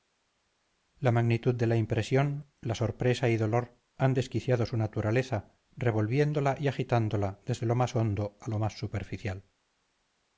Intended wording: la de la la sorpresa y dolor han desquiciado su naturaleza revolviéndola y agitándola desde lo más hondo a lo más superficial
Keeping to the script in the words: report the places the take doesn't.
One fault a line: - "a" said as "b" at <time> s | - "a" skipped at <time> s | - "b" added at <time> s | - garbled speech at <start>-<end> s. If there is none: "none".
- "magnitud" added at 1.1 s
- "impresión" added at 1.8 s